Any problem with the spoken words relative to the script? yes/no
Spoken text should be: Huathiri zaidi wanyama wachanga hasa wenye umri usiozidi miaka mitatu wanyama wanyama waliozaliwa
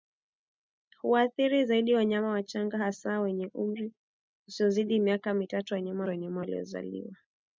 no